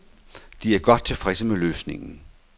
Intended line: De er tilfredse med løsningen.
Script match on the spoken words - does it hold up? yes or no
no